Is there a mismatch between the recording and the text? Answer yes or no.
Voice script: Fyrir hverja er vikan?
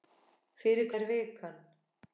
yes